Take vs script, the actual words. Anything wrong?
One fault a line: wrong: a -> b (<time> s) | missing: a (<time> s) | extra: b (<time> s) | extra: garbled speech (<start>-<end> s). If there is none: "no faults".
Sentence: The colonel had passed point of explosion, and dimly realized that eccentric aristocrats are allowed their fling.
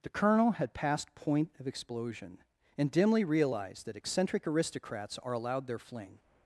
no faults